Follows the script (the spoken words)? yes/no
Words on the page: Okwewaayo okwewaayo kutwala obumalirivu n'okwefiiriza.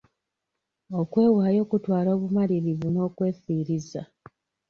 no